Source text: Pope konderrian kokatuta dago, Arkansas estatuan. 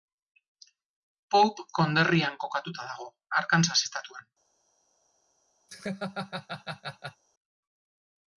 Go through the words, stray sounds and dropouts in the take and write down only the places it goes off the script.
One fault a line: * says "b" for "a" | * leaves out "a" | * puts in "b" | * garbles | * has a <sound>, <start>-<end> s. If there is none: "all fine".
* has a laugh, 5.7-7.2 s